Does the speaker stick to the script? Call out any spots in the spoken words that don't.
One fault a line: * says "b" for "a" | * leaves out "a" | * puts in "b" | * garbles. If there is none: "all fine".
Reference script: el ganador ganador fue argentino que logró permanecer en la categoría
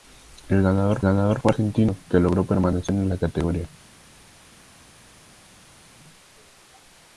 all fine